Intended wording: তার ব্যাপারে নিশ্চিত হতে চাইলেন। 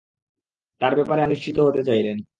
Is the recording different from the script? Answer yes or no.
no